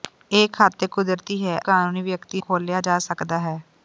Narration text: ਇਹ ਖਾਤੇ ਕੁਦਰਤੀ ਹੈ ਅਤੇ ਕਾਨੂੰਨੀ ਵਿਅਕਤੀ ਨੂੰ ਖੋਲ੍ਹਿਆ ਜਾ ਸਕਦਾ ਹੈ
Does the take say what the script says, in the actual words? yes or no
no